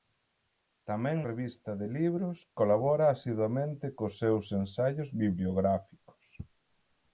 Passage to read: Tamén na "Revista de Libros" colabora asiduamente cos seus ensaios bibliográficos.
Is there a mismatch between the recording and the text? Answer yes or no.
yes